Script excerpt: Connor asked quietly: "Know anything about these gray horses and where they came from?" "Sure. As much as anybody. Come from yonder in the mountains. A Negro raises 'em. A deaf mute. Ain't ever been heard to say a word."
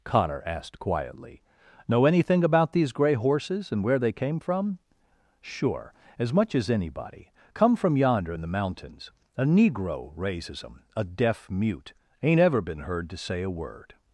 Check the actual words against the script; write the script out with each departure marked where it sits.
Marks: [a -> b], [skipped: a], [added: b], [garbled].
Connor asked quietly: "Know anything about these gray horses and where they came from?" "Sure. As much as anybody. Come from yonder in the mountains. A Negro raises 'em. A deaf mute. Ain't ever been heard to say a word."